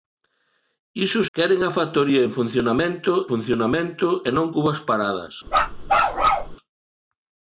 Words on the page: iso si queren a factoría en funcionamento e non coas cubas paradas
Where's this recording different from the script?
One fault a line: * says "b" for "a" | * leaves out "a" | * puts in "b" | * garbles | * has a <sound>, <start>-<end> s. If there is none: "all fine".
* leaves out "si"
* puts in "funcionamento"
* leaves out "coas"
* has a bark, 5.5-6.6 s